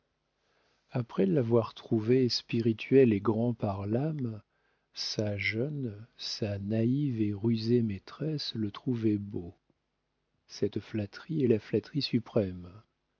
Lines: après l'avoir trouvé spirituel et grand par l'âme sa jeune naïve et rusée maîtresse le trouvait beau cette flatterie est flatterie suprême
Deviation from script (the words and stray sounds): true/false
true